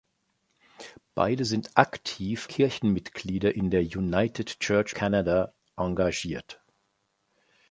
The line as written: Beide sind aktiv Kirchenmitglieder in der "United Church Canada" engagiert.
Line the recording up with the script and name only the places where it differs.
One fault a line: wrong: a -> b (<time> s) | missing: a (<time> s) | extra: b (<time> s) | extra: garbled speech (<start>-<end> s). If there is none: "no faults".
no faults